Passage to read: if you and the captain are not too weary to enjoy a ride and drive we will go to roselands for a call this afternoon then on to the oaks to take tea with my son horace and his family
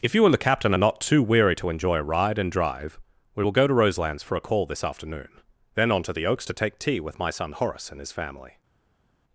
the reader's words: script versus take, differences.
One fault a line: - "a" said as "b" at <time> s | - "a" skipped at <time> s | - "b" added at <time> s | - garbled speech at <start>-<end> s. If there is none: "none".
none